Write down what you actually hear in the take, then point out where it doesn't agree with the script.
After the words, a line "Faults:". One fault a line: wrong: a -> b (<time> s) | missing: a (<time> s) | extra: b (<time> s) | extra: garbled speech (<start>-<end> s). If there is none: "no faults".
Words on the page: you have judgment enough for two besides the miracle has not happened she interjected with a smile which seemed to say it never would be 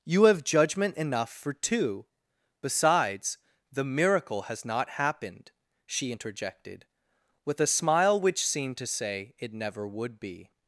you have judgment enough for two besides the miracle has not happened she interjected with a smile which seemed to say it never would be
Faults:
no faults